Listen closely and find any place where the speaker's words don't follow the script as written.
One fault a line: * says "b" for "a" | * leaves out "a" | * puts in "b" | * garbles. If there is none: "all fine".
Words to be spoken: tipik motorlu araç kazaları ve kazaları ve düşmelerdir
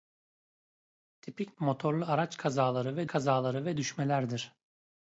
all fine